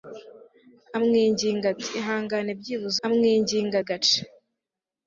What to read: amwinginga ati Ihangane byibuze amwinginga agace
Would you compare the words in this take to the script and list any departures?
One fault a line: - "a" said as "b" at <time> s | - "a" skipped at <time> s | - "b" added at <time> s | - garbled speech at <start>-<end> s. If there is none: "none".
none